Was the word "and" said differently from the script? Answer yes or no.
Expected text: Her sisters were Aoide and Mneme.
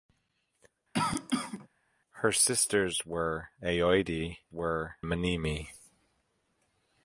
yes